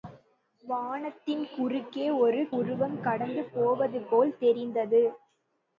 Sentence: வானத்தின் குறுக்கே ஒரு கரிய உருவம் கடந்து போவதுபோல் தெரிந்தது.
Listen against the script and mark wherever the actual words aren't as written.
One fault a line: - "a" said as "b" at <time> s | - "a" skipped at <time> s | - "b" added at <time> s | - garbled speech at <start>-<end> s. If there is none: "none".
- "கரிய" skipped at 2.4 s